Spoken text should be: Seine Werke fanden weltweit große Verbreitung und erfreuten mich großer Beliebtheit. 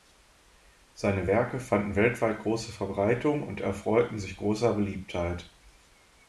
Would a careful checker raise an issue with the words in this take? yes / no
yes